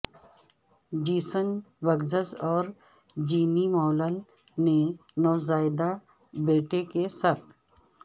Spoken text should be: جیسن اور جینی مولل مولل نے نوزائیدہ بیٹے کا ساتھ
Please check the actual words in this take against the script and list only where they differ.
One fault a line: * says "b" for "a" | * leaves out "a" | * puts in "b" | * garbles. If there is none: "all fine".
* puts in "بگزس"
* leaves out "مولل"
* says "کے" for "کا"